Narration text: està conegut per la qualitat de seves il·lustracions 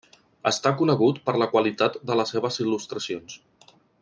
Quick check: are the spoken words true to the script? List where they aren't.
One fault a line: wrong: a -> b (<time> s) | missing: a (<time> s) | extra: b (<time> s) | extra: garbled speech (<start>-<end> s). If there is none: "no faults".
extra: les (2.2 s)